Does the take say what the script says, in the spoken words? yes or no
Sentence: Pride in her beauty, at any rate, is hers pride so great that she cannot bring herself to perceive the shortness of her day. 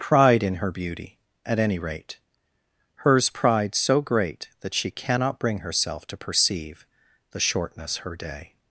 no